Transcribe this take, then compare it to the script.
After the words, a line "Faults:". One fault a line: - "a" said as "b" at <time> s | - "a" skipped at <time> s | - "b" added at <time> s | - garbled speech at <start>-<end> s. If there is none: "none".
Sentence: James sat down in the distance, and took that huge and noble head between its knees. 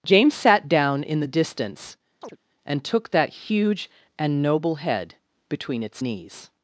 James sat down in the distance, and took that huge and noble head between its knees.
Faults:
none